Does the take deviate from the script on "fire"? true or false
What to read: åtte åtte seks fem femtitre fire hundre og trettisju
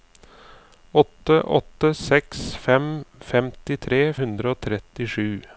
true